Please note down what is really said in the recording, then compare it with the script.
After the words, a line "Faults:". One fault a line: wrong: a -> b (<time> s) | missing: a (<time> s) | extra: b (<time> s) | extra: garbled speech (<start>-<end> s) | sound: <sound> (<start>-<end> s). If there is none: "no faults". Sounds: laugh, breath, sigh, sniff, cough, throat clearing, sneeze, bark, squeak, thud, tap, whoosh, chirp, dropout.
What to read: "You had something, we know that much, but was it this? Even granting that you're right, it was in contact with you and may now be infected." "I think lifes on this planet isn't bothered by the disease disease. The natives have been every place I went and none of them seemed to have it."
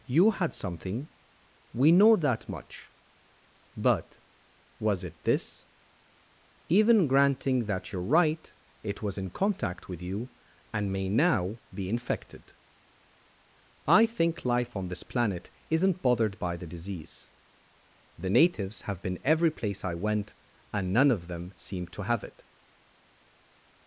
"You had something, we know that much, but was it this? Even granting that you're right, it was in contact with you and may now be infected." "I think life on this planet isn't bothered by the disease. The natives have been every place I went and none of them seemed to have it."
Faults:
wrong: lifes -> life (14.4 s)
missing: disease (17.3 s)